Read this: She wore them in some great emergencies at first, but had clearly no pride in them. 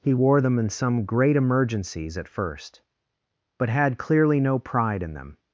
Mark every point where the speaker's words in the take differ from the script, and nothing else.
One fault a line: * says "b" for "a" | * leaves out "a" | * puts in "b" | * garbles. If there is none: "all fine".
* says "He" for "She"